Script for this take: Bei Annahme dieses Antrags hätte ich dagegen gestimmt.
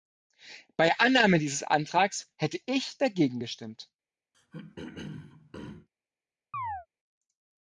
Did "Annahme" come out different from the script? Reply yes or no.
no